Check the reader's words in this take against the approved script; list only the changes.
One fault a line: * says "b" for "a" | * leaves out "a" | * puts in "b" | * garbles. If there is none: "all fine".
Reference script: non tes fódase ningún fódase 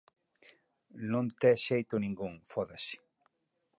* says "xeito" for "fódase"